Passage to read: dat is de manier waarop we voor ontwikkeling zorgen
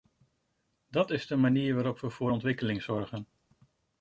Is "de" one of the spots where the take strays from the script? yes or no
no